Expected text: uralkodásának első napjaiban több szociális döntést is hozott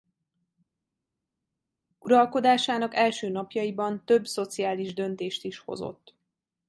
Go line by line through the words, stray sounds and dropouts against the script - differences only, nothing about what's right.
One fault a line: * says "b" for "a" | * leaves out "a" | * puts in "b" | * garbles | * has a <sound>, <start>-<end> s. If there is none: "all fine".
all fine